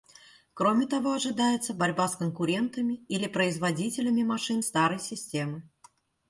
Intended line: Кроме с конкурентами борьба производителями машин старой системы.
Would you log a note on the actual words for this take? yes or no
yes